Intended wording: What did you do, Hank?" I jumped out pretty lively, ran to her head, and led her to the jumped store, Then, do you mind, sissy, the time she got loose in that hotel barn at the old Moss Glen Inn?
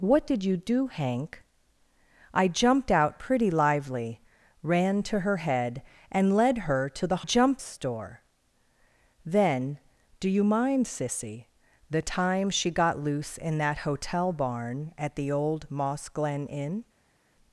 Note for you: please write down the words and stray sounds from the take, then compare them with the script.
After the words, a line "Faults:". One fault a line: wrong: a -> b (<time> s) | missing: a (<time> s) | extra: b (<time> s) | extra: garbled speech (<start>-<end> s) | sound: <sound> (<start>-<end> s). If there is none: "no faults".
What did you do, Hank?" I jumped out pretty lively, ran to her head, and led her to the jumped store, Then, do you mind, sissy, the time she got loose in that hotel barn at the old Moss Glen Inn?
Faults:
no faults